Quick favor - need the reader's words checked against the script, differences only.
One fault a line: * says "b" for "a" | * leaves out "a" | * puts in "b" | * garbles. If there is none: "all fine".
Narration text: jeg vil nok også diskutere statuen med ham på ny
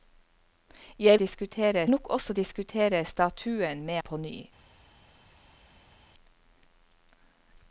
* says "diskutere" for "vil"
* leaves out "ham"